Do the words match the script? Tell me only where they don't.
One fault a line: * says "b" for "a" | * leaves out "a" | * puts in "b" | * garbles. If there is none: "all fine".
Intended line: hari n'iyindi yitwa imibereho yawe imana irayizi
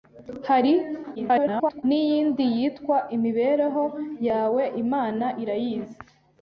* garbles